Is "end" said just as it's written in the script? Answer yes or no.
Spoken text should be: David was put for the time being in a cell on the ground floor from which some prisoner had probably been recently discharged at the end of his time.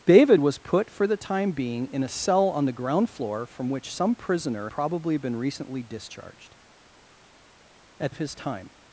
no